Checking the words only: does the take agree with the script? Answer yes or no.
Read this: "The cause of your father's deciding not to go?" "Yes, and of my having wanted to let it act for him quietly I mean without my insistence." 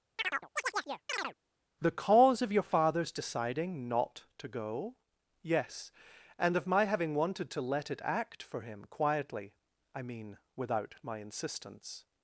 yes